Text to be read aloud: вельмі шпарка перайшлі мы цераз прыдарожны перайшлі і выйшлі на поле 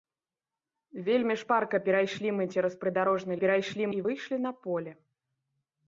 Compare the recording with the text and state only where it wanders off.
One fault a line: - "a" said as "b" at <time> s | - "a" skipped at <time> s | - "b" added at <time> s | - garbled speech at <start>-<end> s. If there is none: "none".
none